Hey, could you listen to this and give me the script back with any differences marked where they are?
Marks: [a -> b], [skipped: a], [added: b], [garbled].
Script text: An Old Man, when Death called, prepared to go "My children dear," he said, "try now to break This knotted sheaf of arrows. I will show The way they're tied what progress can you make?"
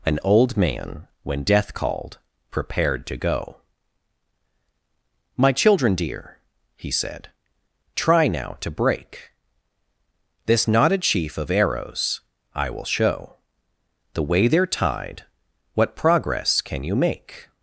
An Old Man, when Death called, prepared to go "My children dear," he said, "try now to break This knotted sheaf of arrows. I will show The way they're tied what progress can you make?"